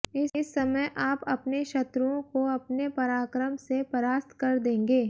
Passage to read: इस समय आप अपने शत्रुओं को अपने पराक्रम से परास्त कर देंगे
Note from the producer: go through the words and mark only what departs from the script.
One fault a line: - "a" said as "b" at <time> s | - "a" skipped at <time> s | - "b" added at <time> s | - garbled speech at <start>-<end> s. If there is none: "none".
none